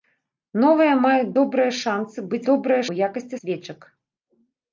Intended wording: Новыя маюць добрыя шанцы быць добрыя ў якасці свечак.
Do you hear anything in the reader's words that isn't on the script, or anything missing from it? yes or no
no